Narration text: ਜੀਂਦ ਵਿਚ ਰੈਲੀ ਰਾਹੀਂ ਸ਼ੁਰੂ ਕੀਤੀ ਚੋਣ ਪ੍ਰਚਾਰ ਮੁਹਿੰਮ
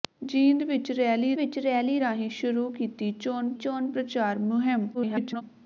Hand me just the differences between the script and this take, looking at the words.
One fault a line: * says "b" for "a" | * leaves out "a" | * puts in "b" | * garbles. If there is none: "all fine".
* puts in "ਵਿਚ ਰੈਲੀ"
* puts in "ਚੋਣ"
* garbles